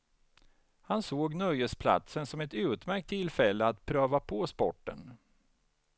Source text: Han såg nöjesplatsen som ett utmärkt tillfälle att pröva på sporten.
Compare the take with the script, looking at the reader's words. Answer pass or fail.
pass